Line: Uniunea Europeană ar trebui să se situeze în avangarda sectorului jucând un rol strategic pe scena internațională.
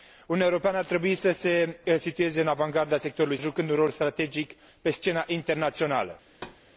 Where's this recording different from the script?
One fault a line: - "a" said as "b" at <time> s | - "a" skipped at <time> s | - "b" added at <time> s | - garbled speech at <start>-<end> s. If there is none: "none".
none